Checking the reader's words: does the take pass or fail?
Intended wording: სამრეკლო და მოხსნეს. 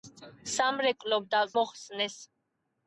pass